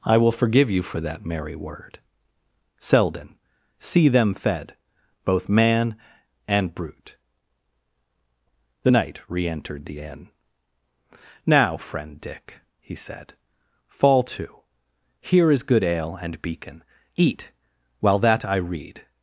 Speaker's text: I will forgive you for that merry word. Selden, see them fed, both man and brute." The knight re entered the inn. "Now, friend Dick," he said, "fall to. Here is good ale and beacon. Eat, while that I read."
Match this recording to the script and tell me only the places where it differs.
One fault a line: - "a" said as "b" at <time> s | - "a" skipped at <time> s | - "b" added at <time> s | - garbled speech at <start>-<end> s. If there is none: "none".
none